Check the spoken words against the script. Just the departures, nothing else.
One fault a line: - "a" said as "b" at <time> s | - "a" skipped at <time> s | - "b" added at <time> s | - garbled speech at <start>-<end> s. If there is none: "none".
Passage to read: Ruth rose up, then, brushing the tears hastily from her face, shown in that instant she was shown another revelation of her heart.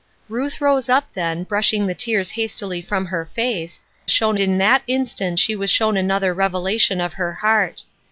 none